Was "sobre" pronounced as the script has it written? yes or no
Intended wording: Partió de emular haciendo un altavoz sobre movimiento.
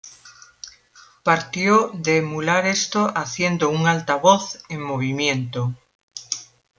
no